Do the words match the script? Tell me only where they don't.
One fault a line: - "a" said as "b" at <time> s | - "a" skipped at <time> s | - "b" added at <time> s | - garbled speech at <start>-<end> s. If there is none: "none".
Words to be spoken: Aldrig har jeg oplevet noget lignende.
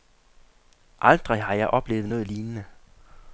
none